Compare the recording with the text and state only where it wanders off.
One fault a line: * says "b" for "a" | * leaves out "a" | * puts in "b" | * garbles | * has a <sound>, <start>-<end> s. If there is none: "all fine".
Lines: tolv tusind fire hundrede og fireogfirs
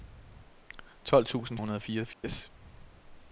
* leaves out "fire"
* has a dropout, 2.1-2.2 s